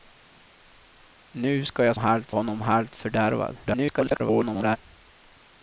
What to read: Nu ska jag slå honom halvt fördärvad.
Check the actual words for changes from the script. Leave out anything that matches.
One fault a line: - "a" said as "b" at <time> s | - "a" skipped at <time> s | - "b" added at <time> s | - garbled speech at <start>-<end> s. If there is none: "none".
- "slå" said as "halvt" at 2.0 s
- garbled speech at 3.6-4.8 s